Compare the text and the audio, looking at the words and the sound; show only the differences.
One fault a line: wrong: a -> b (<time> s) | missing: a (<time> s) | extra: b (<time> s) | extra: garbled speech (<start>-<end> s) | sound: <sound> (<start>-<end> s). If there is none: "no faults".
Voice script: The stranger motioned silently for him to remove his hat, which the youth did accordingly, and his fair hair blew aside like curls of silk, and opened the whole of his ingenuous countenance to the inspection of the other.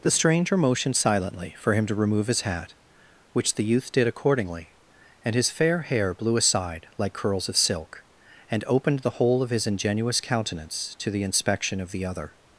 no faults